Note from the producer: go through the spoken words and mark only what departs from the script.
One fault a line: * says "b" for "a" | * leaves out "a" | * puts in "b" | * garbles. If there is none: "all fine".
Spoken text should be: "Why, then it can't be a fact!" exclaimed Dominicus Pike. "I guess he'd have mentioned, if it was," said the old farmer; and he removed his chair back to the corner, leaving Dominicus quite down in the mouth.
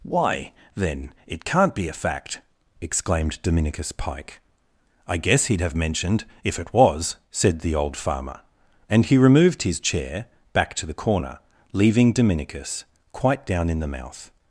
all fine